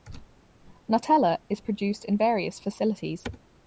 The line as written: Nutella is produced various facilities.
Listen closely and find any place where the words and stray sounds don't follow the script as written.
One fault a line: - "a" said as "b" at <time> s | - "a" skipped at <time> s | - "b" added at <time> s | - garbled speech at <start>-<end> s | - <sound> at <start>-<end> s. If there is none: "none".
- "in" added at 2.0 s